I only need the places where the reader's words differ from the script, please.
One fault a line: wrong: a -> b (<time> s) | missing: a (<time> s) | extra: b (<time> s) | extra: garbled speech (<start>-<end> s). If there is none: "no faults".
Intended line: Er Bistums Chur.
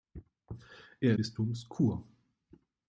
no faults